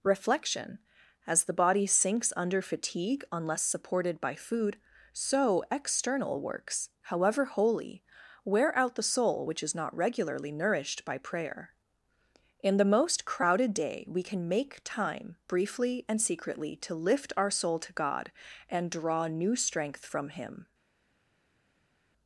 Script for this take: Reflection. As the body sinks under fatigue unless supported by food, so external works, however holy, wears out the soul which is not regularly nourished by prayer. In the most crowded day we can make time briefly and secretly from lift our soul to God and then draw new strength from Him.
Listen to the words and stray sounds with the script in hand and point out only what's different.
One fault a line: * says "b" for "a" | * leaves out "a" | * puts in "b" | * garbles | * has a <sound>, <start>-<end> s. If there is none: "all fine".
* says "wear" for "wears"
* says "to" for "from"
* leaves out "then"